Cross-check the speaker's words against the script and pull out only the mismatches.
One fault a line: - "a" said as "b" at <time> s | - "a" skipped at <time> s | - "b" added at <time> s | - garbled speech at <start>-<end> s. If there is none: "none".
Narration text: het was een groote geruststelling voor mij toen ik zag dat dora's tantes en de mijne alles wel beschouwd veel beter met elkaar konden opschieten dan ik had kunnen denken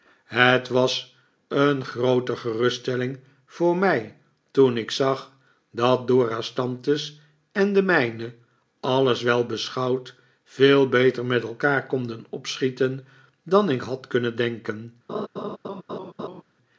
none